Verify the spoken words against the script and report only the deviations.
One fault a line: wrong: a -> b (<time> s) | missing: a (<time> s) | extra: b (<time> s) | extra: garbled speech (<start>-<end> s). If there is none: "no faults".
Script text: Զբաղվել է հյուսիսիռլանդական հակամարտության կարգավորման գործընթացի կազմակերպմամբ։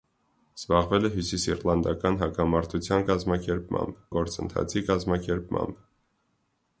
wrong: կարգավորման -> կազմակերպմամբ (3.1 s)